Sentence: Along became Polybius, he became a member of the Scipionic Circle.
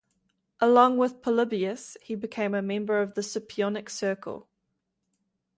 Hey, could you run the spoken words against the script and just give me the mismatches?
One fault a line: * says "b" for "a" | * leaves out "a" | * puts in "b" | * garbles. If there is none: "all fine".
* says "with" for "became"